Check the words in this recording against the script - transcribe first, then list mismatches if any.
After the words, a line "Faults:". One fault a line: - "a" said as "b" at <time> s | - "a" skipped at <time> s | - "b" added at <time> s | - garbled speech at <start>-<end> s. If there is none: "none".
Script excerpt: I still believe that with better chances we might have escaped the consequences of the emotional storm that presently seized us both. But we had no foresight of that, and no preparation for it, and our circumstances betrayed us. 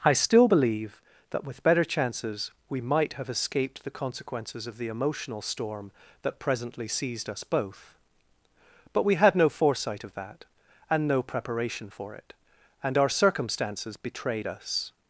I still believe that with better chances we might have escaped the consequences of the emotional storm that presently seized us both. But we had no foresight of that, and no preparation for it, and our circumstances betrayed us.
Faults:
none